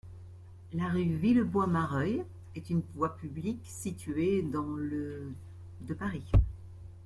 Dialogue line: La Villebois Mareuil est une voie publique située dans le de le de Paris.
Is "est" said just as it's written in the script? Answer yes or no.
yes